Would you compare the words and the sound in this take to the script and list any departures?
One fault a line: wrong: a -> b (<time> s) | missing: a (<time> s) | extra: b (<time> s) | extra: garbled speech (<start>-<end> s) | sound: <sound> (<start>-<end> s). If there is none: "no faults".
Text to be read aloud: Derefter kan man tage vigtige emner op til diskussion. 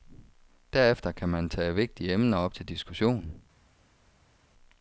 no faults